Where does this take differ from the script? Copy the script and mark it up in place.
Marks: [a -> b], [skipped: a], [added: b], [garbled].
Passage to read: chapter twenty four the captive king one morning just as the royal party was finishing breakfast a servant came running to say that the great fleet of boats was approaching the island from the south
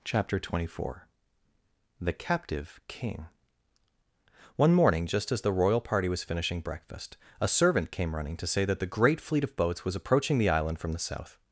chapter twenty four the captive king one morning just as the royal party was finishing breakfast a servant came running to say that the great fleet of boats was approaching the island from the south